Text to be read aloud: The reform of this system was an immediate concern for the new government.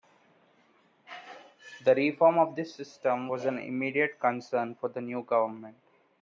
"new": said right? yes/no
yes